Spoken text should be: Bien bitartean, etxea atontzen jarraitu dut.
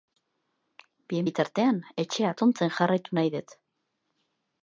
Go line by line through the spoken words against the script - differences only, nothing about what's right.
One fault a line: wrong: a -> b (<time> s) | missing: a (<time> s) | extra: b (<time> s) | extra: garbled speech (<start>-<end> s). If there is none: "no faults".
extra: nahi (3.2 s)